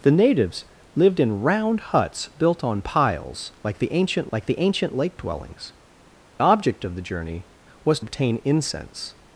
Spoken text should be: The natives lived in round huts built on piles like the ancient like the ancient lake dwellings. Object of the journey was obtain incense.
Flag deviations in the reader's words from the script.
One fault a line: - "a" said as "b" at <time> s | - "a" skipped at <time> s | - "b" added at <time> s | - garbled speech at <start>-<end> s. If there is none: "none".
none